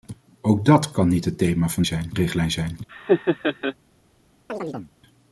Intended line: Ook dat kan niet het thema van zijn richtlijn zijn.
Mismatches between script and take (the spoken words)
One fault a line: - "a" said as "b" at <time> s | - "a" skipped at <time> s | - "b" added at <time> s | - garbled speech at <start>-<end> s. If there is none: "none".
none